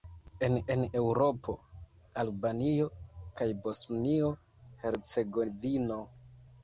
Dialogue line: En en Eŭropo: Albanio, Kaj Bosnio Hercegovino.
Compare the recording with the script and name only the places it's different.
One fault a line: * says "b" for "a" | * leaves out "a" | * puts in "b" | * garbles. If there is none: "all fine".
all fine